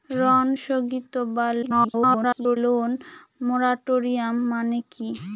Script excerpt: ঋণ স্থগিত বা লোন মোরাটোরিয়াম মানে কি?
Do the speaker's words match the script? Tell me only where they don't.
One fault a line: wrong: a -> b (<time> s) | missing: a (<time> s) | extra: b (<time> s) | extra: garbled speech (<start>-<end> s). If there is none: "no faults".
extra: garbled speech (1.6-2.6 s)